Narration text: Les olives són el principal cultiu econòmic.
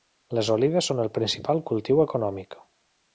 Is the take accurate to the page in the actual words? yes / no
yes